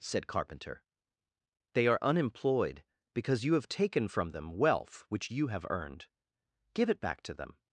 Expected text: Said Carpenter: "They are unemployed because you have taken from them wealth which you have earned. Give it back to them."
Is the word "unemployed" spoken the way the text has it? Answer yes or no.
yes